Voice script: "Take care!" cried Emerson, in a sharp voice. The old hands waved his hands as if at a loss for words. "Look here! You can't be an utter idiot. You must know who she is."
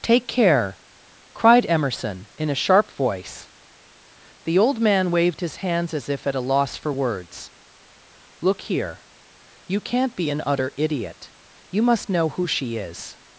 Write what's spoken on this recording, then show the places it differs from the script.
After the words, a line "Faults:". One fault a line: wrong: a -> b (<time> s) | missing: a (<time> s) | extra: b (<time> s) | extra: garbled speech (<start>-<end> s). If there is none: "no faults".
"Take care!" cried Emerson, in a sharp voice. The old man waved his hands as if at a loss for words. "Look here! You can't be an utter idiot. You must know who she is."
Faults:
wrong: hands -> man (4.8 s)